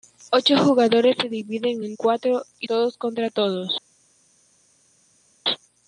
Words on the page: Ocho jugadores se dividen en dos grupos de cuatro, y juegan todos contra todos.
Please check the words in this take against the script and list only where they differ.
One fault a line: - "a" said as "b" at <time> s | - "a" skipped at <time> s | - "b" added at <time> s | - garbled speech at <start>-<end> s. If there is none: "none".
- "dos grupos de" skipped at 1.9 s
- "juegan" skipped at 2.7 s